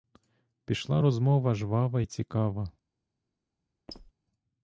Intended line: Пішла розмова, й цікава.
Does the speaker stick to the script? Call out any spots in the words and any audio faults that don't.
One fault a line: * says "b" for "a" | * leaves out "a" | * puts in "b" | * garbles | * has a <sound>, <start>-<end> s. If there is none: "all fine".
* puts in "жвава"
* has a squeak, 3.9-4.1 s